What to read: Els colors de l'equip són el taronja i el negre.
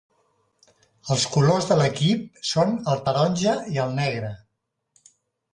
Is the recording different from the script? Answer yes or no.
no